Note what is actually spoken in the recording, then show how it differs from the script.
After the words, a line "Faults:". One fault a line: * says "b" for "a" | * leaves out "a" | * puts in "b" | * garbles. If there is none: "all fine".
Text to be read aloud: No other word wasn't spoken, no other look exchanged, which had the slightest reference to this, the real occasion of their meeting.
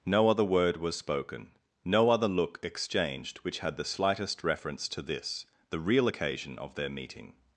No other word was spoken, no other look exchanged, which had the slightest reference to this, the real occasion of their meeting.
Faults:
* says "was" for "wasn't"